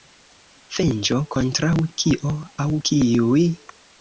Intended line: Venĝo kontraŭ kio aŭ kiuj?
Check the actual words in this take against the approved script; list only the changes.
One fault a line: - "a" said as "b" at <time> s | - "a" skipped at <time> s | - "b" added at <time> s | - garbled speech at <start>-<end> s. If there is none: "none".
none